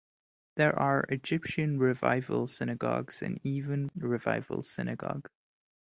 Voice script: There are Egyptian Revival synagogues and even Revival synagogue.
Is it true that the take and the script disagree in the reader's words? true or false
false